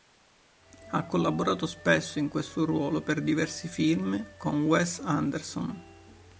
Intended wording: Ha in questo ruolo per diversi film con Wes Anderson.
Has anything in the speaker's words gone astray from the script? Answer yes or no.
yes